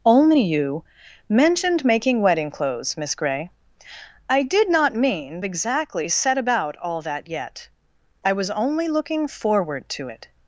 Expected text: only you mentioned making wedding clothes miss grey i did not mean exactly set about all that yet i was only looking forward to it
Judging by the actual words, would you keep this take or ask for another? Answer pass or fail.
pass